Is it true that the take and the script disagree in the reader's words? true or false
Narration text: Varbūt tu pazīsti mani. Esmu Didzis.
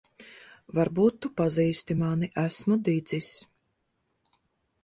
false